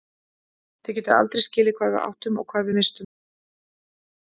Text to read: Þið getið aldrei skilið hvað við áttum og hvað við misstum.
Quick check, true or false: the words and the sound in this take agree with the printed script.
true